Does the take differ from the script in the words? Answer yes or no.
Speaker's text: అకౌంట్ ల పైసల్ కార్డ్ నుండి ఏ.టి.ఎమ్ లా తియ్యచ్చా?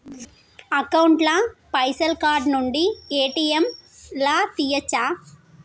no